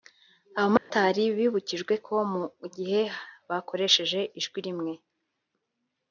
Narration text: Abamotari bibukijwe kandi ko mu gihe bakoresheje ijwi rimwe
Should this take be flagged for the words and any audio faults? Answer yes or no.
yes